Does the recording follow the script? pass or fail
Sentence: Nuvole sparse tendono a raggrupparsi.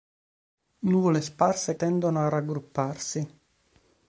pass